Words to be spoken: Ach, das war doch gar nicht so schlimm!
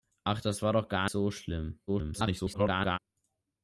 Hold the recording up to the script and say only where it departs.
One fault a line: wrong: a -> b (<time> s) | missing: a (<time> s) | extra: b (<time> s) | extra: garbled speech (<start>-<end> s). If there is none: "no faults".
missing: nicht (1.1 s)
extra: garbled speech (1.9-3.0 s)